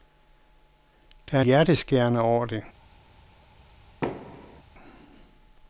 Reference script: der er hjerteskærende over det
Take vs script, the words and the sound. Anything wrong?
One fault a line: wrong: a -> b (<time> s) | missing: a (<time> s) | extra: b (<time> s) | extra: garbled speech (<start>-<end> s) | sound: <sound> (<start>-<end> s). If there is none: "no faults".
sound: thud (4.0-4.6 s)